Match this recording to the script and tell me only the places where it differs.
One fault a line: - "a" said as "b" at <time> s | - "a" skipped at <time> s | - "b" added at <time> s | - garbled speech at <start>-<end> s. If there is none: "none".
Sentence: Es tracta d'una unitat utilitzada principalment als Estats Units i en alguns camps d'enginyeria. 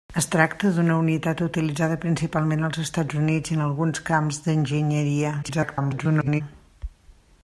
- garbled speech at 5.4-6.4 s